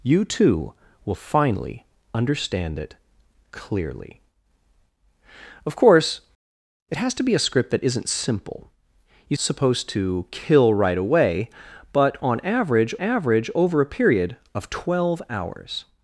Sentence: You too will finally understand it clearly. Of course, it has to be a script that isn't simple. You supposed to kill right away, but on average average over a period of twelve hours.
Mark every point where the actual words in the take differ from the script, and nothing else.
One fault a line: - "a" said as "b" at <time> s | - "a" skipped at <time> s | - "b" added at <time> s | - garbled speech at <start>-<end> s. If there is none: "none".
none